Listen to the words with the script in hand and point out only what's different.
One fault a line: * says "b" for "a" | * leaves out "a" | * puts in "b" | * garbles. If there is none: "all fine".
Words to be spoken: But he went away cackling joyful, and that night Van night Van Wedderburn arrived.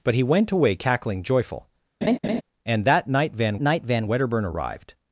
all fine